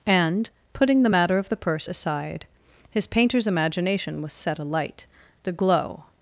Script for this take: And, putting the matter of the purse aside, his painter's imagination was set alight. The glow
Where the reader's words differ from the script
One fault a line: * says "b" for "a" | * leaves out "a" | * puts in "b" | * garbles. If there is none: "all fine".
all fine